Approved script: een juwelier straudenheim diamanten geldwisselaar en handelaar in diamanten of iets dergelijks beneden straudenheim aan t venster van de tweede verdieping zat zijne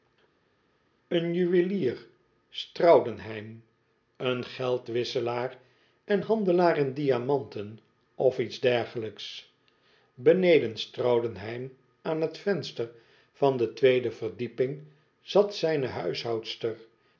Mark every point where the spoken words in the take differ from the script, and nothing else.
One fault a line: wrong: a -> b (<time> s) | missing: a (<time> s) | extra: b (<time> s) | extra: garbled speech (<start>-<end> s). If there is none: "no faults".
wrong: diamanten -> een (4.2 s)